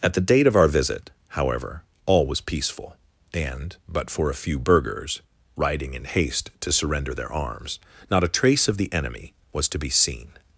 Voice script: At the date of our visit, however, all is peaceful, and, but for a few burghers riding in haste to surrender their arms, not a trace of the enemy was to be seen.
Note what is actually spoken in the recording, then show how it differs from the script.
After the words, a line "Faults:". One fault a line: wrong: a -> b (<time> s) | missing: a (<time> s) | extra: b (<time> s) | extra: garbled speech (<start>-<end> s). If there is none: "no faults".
At the date of our visit, however, all was peaceful, and, but for a few burghers riding in haste to surrender their arms, not a trace of the enemy was to be seen.
Faults:
wrong: is -> was (2.2 s)